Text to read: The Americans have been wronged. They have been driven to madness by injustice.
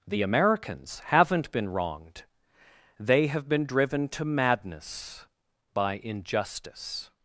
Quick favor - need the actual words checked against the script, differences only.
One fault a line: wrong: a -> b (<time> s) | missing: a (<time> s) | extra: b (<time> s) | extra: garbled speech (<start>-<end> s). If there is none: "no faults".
wrong: have -> haven't (1.1 s)